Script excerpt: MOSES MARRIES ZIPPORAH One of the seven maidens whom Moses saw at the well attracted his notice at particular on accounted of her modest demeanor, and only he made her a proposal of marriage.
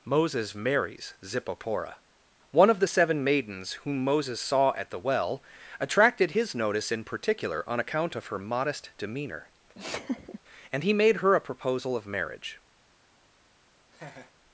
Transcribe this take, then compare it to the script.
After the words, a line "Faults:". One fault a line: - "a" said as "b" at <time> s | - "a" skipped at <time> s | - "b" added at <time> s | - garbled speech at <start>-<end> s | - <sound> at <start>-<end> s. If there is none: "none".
MOSES MARRIES ZIPPORAH One of the seven maidens whom Moses saw at the well attracted his notice in particular on account of her modest demeanor, and he made her a proposal of marriage.
Faults:
- "at" said as "in" at 6.9 s
- "accounted" said as "account" at 7.8 s
- laugh at 9.7-10.4 s
- "only" skipped at 10.8 s
- laugh at 13.9-14.3 s